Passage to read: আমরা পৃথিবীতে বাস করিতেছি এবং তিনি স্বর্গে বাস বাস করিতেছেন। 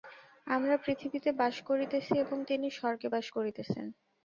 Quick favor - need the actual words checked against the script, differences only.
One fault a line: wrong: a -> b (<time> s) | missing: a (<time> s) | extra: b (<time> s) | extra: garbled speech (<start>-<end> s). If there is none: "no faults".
missing: বাস (3.3 s)